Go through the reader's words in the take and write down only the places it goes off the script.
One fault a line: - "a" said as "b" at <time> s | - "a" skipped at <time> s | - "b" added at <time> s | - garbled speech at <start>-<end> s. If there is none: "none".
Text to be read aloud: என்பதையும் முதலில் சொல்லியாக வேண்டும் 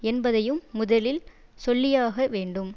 none